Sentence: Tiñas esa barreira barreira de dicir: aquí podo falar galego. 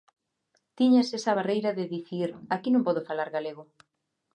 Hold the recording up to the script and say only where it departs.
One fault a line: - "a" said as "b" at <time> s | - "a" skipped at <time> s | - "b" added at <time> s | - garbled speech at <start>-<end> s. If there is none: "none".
- "barreira" skipped at 1.7 s
- "non" added at 2.7 s